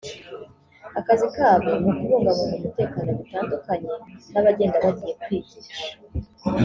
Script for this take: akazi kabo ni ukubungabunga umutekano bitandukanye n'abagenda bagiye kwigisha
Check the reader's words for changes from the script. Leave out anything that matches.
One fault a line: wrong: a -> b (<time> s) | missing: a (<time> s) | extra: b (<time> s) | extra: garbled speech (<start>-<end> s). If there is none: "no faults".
no faults